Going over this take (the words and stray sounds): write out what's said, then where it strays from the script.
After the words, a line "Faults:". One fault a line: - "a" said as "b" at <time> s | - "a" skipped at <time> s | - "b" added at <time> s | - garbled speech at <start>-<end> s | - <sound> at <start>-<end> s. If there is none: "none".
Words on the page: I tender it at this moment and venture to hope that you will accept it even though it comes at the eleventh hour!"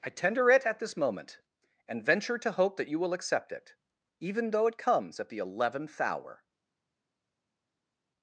I tender it at this moment and venture to hope that you will accept it even though it comes at the eleventh hour!"
Faults:
none